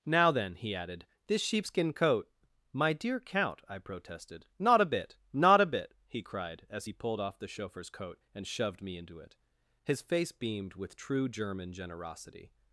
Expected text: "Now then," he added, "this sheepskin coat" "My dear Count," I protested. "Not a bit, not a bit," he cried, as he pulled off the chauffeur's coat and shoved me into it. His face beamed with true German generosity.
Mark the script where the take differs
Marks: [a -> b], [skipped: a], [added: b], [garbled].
"Now then," he added, "this sheepskin coat" "My dear Count," I protested. "Not a bit, not a bit," he cried, as he pulled off the chauffeur's coat and shoved me into it. His face beamed with true German generosity.